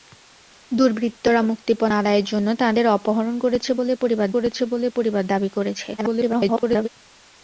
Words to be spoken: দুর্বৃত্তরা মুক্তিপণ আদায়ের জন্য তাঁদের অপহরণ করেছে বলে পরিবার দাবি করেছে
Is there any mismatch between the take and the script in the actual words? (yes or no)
yes